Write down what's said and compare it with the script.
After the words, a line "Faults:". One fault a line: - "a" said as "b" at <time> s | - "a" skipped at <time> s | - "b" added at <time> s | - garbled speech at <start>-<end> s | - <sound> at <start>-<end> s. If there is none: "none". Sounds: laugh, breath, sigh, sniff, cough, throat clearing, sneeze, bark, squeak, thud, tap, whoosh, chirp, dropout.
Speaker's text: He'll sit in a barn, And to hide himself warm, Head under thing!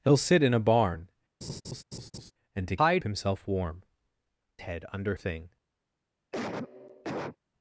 He'll sit in a barn, And to hide himself warm, Head under thing!
Faults:
- laugh at 1.4-2.3 s
- cough at 6.3-7.4 s